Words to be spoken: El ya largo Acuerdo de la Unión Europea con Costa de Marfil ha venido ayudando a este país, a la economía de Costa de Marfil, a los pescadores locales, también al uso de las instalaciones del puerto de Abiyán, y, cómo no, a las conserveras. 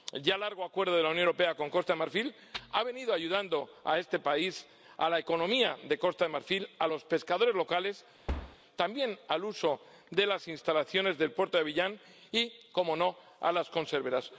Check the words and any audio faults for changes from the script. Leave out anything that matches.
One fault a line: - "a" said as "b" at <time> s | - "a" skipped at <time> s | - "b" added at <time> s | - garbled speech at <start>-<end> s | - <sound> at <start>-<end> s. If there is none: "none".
- thud at 8.3-8.6 s